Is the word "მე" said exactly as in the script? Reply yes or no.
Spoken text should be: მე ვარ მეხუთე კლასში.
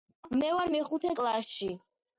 yes